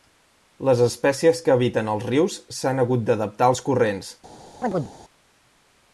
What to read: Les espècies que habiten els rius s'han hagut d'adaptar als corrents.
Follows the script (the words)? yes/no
yes